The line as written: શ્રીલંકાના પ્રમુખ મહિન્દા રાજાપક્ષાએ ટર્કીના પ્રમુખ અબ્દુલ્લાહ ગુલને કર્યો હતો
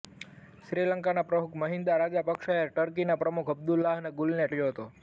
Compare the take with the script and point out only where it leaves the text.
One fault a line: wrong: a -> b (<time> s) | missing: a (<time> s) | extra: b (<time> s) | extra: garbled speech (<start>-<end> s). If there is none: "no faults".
no faults